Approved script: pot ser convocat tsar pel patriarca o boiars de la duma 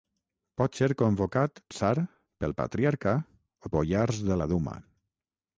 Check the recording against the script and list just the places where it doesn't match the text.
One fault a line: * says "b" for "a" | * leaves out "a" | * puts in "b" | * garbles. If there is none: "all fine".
all fine